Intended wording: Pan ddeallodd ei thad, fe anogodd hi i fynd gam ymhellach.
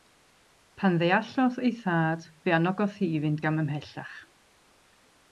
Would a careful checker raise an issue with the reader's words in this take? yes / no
no